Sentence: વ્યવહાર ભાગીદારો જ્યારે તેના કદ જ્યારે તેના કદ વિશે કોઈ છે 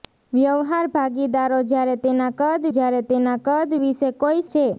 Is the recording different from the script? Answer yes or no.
no